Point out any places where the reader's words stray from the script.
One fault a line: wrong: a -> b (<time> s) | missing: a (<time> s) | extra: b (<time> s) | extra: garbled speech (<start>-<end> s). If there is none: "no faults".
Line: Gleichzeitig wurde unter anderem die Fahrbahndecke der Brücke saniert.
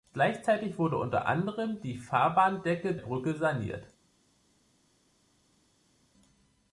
missing: der (3.0 s)